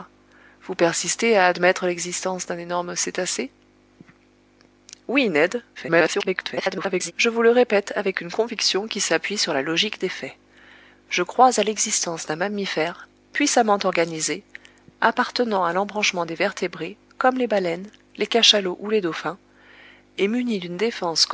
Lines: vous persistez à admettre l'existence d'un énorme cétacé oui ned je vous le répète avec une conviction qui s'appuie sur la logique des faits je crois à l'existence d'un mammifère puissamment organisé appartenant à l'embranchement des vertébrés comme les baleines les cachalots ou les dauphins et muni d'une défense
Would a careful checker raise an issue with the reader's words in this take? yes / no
yes